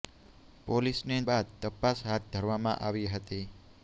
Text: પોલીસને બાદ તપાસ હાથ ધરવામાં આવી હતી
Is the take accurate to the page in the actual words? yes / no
yes